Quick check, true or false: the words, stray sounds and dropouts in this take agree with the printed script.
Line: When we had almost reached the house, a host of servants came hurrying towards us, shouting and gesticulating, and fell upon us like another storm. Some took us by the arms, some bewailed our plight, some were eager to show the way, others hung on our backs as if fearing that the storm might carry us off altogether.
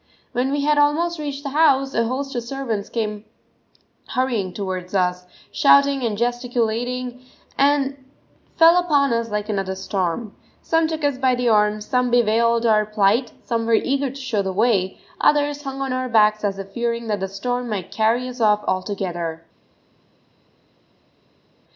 true